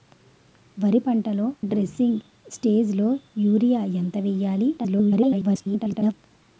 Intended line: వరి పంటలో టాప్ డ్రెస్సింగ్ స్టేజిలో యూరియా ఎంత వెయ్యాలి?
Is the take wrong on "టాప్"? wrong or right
wrong